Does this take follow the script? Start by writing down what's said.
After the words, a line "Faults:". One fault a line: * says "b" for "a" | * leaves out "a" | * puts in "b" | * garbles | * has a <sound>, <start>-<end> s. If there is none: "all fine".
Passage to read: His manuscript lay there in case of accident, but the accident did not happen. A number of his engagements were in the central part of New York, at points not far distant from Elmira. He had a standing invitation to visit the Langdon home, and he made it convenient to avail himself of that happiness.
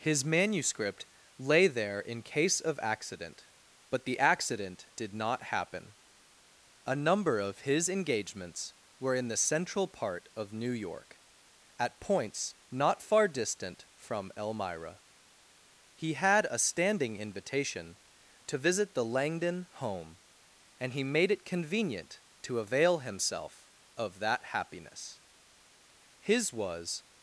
His manuscript lay there in case of accident, but the accident did not happen. A number of his engagements were in the central part of New York, at points not far distant from Elmira. He had a standing invitation to visit the Langdon home, and he made it convenient to avail himself of that happiness. His was
Faults:
* puts in "His was"